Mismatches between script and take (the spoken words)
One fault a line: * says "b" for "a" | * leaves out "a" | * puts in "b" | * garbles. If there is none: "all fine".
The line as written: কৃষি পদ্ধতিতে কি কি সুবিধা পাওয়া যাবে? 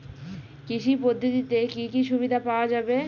all fine